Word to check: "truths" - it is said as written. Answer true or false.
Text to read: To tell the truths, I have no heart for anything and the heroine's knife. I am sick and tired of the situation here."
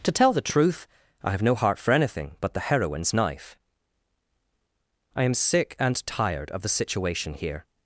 false